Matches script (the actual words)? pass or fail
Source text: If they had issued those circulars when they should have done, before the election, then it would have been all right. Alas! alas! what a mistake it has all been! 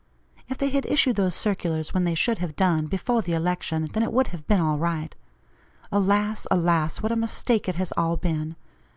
pass